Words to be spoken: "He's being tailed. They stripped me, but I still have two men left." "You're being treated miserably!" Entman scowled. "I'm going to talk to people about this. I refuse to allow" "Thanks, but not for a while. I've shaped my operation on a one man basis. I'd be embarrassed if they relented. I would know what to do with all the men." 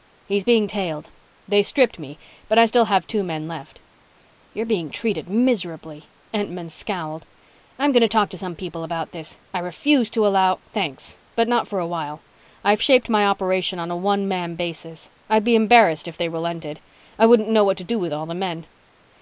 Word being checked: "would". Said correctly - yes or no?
no